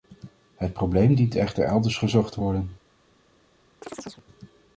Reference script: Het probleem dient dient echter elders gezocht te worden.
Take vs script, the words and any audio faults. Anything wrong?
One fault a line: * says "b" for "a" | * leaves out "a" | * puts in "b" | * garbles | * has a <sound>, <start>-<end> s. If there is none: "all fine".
* leaves out "dient"
* has a chirp, 3.8-4.2 s